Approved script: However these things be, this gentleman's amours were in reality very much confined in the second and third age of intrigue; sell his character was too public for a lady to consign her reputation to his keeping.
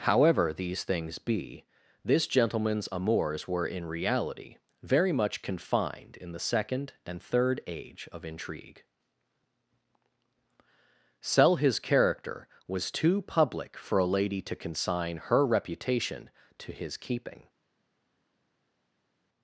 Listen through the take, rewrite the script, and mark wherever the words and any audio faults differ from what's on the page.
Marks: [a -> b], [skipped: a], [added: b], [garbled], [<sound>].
However these things be, this gentleman's amours were in reality very much confined in the second and third age of intrigue; sell his character was too public for a lady to consign her reputation to his keeping.